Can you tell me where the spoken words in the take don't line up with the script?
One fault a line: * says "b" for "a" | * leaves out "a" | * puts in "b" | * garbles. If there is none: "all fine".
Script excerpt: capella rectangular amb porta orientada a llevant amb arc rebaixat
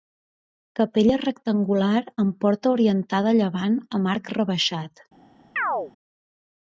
all fine